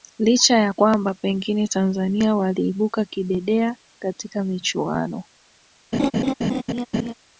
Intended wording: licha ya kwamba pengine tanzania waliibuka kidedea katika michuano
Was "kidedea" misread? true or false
false